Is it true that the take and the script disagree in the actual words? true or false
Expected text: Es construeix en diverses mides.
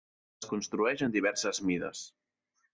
false